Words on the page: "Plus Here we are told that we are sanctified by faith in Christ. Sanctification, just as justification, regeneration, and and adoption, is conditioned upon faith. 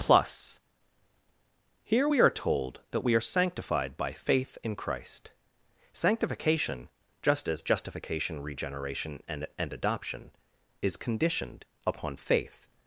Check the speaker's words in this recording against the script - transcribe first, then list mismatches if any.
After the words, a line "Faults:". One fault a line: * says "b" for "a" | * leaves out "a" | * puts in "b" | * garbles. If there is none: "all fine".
"Plus Here we are told that we are sanctified by faith in Christ. Sanctification, just as justification, regeneration, and and adoption, is conditioned upon faith.
Faults:
all fine